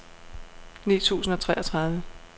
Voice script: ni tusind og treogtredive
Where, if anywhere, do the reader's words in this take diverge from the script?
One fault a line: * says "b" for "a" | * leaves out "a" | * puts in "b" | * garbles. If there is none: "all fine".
all fine